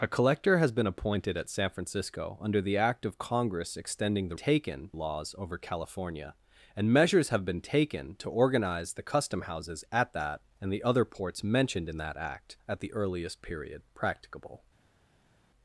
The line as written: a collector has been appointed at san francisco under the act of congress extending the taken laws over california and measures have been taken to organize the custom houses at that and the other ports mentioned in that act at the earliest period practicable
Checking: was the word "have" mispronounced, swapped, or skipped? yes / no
no